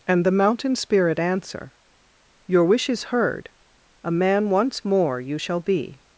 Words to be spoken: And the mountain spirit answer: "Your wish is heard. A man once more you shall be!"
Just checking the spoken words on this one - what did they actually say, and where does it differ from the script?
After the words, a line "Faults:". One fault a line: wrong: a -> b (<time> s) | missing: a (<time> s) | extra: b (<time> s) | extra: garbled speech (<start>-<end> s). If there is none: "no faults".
And the mountain spirit answer: "Your wish is heard. A man once more you shall be!"
Faults:
no faults